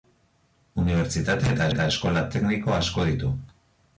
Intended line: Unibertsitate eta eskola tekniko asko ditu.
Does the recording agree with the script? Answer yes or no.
no